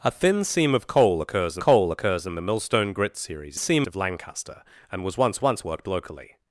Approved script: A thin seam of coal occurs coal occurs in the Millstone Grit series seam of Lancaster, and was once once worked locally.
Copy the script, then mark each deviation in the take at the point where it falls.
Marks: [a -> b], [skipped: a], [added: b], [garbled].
A thin seam of coal occurs coal occurs in the Millstone Grit series seam of Lancaster, and was once once worked locally.